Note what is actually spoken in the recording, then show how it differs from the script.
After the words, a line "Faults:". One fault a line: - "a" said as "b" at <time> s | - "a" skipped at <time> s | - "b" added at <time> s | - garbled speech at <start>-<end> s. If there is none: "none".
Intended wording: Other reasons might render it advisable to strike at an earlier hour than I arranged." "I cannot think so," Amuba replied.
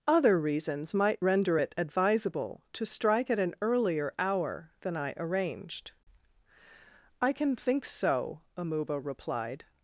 Other reasons might render it advisable to strike at an earlier hour than I arranged." "I can think so," Amuba replied.
Faults:
- "cannot" said as "can" at 7.3 s